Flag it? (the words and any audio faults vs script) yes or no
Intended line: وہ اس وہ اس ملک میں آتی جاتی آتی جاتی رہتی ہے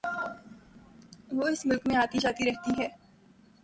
yes